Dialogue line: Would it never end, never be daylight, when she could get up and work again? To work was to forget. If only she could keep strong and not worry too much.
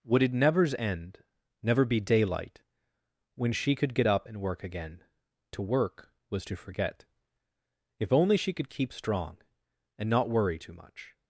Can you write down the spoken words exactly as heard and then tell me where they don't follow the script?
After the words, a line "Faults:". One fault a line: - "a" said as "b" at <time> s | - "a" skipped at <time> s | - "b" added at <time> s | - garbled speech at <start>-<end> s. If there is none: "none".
Would it nevers end, never be daylight, when she could get up and work again? To work was to forget. If only she could keep strong and not worry too much.
Faults:
- "never" said as "nevers" at 0.3 s